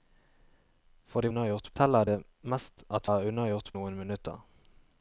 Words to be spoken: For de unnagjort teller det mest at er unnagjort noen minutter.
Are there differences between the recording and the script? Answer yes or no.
no